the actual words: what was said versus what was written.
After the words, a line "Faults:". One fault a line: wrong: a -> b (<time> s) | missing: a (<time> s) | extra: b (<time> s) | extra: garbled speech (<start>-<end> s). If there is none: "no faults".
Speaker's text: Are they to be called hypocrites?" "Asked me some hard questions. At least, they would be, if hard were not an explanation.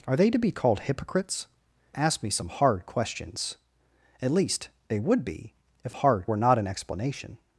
Are they to be called hypocrites?" "Asked me some hard questions. At least, they would be, if hard were not an explanation.
Faults:
no faults